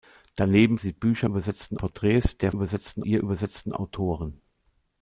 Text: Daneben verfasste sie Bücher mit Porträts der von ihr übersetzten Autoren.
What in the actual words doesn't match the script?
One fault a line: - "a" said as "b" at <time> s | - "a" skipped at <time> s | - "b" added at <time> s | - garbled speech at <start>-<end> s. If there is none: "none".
- "verfasste" skipped at 0.8 s
- "mit" said as "übersetzten" at 1.3 s
- "von" said as "übersetzten" at 2.5 s